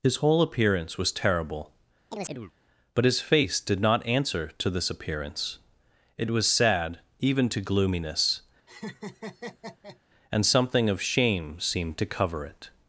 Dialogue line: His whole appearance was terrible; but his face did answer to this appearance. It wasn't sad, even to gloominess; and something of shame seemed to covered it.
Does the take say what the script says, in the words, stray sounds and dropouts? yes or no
no